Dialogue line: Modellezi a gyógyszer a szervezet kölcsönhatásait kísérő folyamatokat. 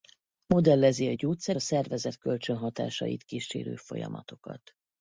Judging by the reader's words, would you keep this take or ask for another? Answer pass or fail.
pass